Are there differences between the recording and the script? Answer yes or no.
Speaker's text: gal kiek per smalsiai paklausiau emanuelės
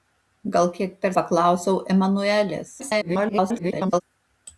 yes